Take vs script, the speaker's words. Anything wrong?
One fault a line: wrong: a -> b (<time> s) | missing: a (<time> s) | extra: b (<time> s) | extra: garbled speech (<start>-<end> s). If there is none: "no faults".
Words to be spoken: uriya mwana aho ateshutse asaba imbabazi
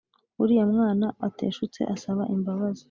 missing: aho (1.1 s)